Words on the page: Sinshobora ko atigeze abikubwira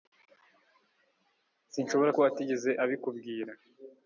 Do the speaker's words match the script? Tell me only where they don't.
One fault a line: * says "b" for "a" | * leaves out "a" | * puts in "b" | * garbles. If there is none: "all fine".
all fine